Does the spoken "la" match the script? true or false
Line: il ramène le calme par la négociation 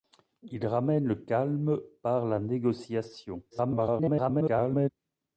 true